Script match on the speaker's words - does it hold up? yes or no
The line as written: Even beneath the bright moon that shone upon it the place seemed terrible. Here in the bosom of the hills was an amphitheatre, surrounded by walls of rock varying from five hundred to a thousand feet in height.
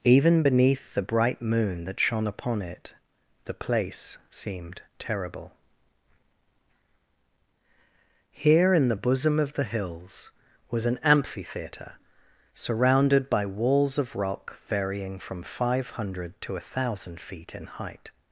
yes